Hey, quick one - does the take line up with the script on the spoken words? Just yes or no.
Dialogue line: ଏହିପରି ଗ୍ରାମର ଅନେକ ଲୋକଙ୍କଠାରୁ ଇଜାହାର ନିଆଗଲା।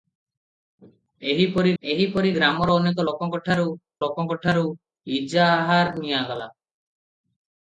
no